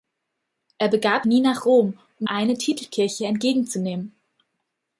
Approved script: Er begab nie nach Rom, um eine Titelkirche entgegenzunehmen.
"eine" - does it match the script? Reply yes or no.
yes